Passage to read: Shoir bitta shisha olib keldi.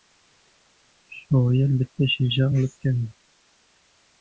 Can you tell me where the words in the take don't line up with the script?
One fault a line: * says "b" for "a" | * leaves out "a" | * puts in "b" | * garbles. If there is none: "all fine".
all fine